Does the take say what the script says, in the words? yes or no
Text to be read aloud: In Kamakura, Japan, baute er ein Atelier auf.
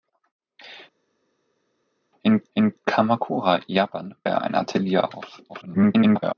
no